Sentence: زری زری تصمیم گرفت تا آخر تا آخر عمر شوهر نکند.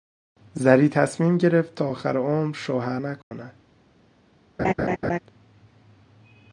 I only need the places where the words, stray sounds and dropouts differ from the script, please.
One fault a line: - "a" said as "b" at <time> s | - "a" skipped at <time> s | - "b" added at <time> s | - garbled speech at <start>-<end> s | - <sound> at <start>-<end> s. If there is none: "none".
- "زری" skipped at 0.9 s
- "تا آخر" skipped at 2.2 s
- dropout at 3.2-3.3 s
- laugh at 4.6-5.2 s